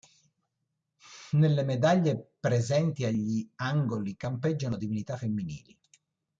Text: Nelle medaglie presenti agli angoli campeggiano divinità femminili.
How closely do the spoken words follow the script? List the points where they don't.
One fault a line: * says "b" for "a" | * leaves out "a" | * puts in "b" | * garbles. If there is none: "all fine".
all fine